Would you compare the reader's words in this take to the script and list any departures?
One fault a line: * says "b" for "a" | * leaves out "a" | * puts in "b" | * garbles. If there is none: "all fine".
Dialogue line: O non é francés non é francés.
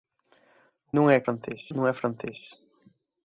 all fine